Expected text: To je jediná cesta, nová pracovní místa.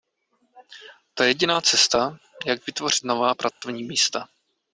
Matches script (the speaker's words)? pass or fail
fail